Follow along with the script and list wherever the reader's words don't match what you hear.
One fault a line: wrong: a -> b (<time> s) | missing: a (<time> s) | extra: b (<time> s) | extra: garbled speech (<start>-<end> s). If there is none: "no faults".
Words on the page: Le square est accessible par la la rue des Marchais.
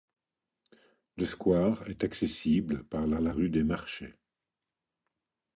no faults